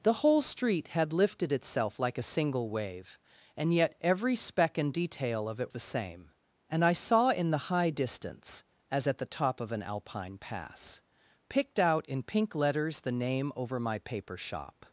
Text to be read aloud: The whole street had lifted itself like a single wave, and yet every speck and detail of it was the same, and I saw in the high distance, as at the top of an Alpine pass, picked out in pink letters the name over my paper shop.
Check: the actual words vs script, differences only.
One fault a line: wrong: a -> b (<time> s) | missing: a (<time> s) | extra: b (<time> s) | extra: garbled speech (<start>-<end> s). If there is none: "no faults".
missing: was (5.7 s)